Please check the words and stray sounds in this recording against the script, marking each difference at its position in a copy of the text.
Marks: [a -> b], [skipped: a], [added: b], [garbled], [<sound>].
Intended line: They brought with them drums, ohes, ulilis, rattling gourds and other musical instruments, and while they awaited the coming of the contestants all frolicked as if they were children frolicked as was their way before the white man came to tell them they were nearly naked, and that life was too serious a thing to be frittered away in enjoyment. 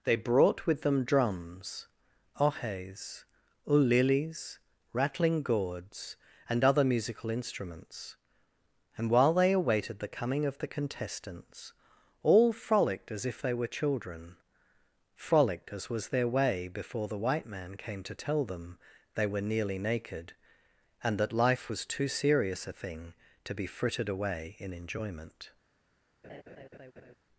They brought with them drums, ohes, ulilis, rattling gourds and other musical instruments, and while they awaited the coming of the contestants all frolicked as if they were children frolicked as was their way before the white man came to tell them they were nearly naked, and that life was too serious a thing to be frittered away in enjoyment. [laugh]